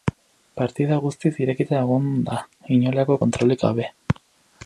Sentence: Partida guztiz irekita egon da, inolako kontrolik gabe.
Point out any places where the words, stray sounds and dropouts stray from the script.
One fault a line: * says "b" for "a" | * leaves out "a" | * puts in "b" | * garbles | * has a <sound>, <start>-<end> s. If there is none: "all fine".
all fine